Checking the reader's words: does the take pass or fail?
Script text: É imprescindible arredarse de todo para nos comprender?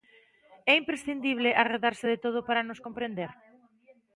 pass